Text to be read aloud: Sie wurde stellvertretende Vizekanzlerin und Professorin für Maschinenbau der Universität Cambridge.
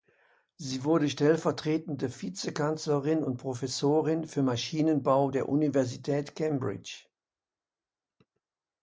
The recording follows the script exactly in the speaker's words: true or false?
true